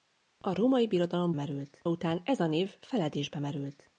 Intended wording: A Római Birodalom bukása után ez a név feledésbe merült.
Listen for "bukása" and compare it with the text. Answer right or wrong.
wrong